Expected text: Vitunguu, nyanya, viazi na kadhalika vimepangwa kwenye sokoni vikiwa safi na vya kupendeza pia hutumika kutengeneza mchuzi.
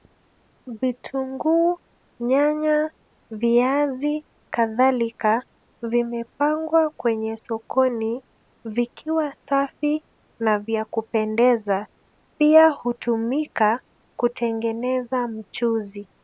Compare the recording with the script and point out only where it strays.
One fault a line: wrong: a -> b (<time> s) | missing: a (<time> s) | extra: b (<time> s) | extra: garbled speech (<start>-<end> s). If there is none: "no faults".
missing: na (4.2 s)